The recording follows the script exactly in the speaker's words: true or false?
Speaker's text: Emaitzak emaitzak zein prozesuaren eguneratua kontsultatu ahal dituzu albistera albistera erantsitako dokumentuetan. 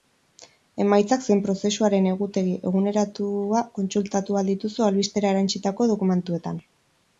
false